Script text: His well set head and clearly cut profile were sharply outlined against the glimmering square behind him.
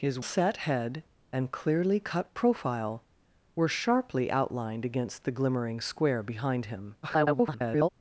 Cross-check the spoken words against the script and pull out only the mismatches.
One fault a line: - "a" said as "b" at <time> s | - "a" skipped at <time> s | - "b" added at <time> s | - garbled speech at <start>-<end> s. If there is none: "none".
- "well" skipped at 0.2 s
- garbled speech at 7.0-7.9 s